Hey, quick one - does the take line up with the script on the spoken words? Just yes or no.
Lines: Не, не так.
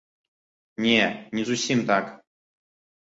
no